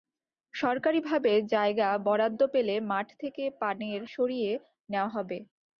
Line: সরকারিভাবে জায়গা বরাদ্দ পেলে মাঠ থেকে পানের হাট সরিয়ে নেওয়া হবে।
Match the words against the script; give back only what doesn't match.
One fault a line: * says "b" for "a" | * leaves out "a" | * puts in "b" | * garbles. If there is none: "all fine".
* leaves out "হাট"